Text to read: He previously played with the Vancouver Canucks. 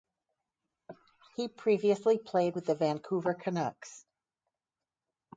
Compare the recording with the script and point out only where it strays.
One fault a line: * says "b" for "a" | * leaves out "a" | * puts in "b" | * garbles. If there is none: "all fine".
all fine